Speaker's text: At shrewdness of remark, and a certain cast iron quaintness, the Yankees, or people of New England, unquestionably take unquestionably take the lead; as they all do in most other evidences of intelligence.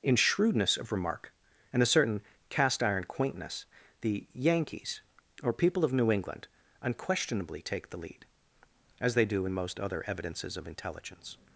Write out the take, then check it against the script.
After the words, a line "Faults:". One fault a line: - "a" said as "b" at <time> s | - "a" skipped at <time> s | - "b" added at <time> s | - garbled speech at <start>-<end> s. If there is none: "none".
In shrewdness of remark, and a certain cast iron quaintness, the Yankees, or people of New England, unquestionably take the lead; as they do in most other evidences of intelligence.
Faults:
- "At" said as "In" at 0.0 s
- "unquestionably take" skipped at 7.9 s
- "all" skipped at 9.2 s